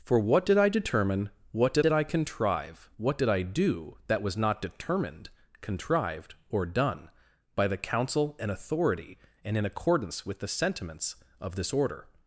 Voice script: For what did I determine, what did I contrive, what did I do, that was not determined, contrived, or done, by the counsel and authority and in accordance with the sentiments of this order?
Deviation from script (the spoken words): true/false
true